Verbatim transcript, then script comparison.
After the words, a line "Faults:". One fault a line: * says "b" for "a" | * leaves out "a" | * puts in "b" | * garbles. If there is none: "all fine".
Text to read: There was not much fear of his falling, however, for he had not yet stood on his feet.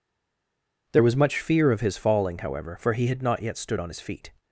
There was much fear of his falling, however, for he had not yet stood on his feet.
Faults:
* leaves out "not"